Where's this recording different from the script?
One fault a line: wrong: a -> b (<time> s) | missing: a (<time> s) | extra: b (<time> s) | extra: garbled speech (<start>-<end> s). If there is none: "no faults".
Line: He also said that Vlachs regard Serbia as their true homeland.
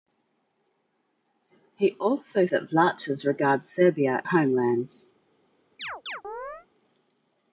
missing: said (2.5 s)
missing: as their true (4.2 s)